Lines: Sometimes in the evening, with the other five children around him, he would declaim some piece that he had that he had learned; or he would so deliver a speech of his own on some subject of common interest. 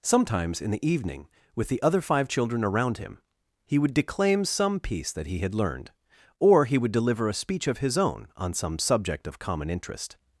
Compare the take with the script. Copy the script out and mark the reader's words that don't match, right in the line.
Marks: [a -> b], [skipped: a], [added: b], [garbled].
Sometimes in the evening, with the other five children around him, he would declaim some piece that he had [skipped: that he had] learned; or he would [skipped: so] deliver a speech of his own on some subject of common interest.